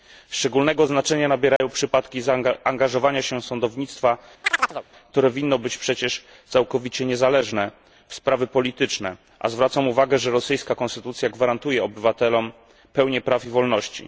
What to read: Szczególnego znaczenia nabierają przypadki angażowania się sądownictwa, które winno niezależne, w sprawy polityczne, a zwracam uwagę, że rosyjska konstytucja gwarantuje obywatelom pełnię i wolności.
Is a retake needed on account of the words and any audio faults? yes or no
yes